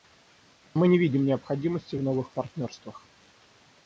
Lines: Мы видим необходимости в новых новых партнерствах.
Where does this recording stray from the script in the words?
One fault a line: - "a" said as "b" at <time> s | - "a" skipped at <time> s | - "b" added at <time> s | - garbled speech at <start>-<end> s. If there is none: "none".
- "не" added at 0.9 s
- "новых" skipped at 2.3 s